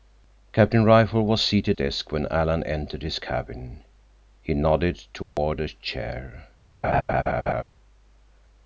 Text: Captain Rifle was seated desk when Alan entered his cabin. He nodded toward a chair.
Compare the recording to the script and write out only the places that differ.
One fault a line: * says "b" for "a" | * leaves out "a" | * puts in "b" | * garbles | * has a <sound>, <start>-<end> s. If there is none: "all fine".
* has a dropout, 5.2-5.4 s
* has a laugh, 6.8-7.6 s